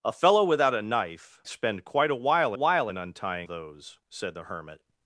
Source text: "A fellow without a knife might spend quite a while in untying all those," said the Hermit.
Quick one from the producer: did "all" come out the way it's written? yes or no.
no